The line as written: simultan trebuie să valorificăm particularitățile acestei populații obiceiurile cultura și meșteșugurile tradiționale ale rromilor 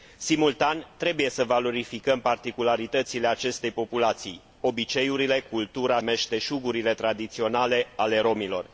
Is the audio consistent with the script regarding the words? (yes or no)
no